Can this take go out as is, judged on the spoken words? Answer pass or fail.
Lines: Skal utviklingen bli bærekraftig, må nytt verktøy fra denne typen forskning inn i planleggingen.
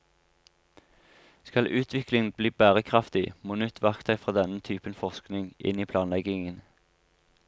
pass